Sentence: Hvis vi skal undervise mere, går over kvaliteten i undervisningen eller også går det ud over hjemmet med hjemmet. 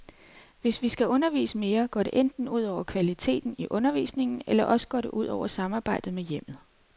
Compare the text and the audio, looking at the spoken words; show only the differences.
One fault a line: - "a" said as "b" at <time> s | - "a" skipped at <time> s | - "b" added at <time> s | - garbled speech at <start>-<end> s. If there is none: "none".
- "det enten ud" added at 2.0 s
- "hjemmet" said as "samarbejdet" at 5.5 s